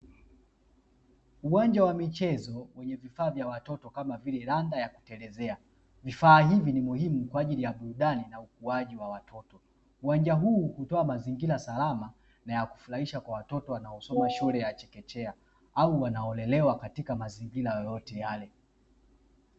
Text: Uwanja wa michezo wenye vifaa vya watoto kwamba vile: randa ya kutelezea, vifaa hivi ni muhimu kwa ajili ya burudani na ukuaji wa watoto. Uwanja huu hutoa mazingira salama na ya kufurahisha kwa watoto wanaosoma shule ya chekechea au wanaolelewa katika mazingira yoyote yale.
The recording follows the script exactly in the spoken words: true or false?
false